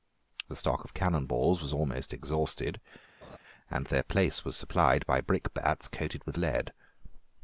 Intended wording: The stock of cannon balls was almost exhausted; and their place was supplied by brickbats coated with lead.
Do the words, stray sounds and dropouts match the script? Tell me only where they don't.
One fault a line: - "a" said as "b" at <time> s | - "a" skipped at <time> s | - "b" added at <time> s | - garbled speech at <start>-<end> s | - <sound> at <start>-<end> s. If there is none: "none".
- laugh at 3.2-3.4 s